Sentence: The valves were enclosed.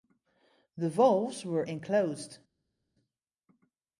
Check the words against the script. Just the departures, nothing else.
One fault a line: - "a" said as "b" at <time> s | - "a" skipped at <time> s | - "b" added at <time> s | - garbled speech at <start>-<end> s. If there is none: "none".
none